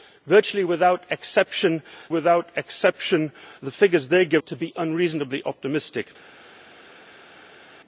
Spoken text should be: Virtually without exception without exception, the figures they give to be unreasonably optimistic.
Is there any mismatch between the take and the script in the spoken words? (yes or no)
no